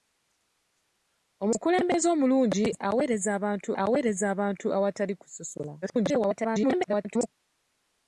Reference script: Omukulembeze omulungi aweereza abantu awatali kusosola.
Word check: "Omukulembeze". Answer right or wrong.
right